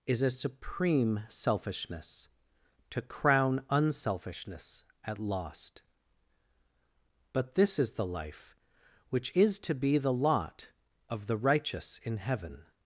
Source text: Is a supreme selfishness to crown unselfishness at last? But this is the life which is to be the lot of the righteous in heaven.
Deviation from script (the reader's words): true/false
true